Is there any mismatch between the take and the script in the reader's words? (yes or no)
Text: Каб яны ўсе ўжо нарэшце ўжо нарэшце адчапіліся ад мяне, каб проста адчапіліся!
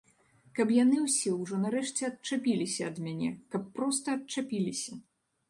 yes